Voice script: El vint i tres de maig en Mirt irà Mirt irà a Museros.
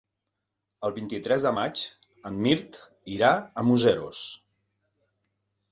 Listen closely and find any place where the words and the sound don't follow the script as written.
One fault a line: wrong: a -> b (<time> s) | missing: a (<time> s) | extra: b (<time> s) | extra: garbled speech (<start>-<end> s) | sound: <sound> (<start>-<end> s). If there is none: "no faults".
missing: Mirt irà (3.3 s)